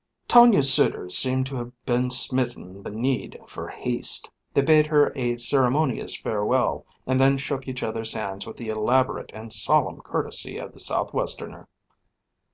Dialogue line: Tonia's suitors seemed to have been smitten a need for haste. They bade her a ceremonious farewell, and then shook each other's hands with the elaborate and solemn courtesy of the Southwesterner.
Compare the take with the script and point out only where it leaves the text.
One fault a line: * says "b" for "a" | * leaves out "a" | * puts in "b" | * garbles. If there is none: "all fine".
all fine